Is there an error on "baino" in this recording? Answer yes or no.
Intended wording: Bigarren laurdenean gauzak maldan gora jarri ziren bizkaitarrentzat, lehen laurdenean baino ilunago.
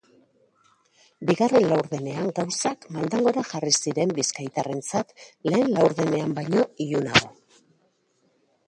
no